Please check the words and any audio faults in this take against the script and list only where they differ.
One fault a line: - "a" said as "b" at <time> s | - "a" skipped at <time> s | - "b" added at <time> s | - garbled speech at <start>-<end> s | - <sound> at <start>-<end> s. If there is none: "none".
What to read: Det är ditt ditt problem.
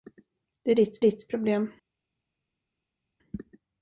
none